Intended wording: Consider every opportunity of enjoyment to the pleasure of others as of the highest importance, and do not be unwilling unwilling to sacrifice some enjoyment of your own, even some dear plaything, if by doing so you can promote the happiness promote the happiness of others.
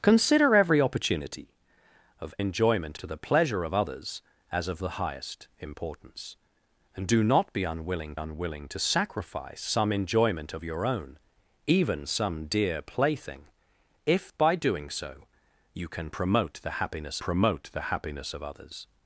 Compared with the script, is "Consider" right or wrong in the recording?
right